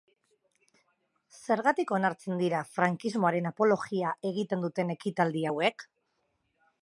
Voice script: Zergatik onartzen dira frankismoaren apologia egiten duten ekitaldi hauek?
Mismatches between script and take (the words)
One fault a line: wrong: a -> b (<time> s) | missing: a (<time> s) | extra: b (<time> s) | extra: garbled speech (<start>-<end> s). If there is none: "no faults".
no faults